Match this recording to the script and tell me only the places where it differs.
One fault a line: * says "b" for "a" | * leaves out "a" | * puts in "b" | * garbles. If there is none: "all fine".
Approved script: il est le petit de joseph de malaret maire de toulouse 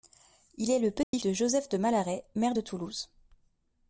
all fine